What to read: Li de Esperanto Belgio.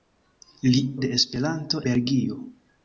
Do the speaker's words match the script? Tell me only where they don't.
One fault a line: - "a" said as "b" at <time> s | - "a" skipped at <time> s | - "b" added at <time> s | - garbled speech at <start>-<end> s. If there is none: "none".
none